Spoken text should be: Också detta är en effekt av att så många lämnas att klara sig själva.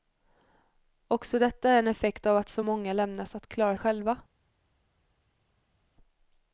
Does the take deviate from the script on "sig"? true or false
true